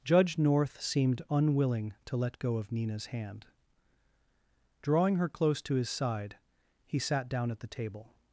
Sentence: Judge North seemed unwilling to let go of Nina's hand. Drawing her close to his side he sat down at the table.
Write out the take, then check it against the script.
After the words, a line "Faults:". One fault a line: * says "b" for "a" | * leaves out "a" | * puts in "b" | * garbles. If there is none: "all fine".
Judge North seemed unwilling to let go of Nina's hand. Drawing her close to his side he sat down at the table.
Faults:
all fine